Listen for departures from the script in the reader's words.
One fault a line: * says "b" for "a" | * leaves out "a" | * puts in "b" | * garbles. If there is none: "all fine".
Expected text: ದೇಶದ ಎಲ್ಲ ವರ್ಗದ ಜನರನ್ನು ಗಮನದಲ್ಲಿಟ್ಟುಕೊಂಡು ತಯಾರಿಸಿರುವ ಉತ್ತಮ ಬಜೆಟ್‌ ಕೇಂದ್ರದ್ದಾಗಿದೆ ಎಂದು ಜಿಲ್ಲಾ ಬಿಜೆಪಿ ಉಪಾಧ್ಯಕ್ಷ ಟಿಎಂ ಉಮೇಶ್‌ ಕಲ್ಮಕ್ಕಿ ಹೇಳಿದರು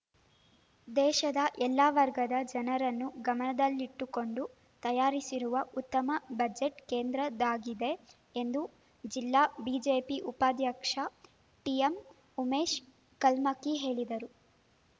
all fine